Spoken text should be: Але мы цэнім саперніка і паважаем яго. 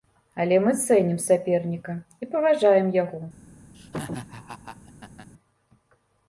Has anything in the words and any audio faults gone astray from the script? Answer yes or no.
yes